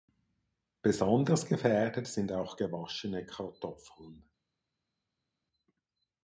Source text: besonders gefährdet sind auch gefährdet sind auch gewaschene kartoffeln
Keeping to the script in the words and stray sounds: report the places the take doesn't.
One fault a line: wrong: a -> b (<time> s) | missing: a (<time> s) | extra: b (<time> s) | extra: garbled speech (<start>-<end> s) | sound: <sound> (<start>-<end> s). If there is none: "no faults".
missing: gefährdet sind auch (2.6 s)